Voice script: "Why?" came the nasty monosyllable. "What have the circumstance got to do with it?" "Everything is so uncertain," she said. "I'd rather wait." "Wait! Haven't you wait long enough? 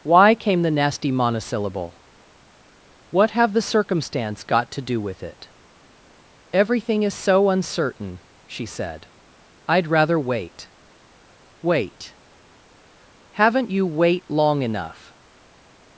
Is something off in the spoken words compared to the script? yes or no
no